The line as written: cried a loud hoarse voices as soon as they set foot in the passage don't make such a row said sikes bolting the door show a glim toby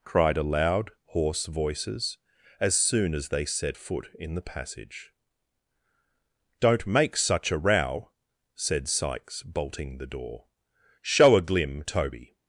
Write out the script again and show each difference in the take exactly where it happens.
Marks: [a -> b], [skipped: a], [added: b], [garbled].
cried a loud hoarse voices as soon as they set foot in the passage don't make such a row said sikes bolting the door show a glim toby